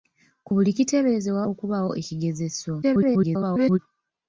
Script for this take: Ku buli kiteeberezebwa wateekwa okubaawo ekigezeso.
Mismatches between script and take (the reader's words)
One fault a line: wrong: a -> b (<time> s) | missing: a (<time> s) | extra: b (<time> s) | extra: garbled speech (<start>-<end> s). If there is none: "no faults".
missing: wateekwa (1.4 s)
extra: garbled speech (2.8-3.8 s)